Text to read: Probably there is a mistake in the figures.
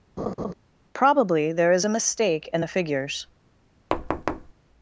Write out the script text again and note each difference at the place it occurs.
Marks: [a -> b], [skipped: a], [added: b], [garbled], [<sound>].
[laugh] Probably there is a mistake in the figures. [thud]